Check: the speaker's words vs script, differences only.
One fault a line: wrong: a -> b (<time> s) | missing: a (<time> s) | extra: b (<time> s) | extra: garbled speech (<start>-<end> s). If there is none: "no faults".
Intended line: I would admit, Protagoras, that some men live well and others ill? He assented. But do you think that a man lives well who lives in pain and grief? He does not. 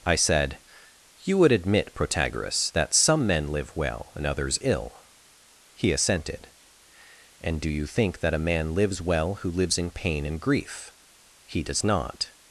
extra: said You (0.1 s)
wrong: But -> And (7.4 s)